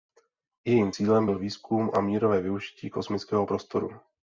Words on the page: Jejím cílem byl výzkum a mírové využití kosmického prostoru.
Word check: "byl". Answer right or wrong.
right